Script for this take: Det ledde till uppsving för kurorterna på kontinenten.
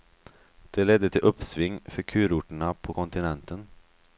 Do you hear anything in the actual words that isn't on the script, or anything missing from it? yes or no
no